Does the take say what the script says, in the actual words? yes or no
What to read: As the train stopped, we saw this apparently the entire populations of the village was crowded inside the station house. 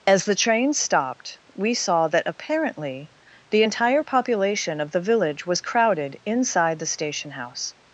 no